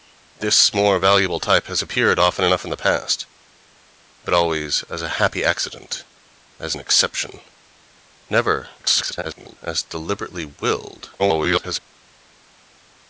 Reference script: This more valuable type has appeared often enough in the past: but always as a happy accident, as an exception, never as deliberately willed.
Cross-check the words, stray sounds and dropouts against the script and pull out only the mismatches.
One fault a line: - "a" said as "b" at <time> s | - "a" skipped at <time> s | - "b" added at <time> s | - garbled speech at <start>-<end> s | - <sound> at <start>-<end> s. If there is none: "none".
- garbled speech at 8.8-9.6 s
- garbled speech at 11.2-11.8 s